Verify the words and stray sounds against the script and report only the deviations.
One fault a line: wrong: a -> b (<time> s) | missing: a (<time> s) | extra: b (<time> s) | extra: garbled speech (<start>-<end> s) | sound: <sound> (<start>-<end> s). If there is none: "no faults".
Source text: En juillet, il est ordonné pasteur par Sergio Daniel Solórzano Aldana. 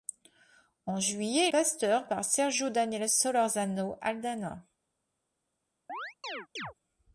missing: est ordonné (1.5 s)
sound: chirp (5.9-6.7 s)